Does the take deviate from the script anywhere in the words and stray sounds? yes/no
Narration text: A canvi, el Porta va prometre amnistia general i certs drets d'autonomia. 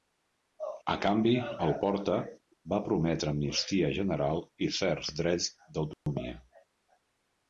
yes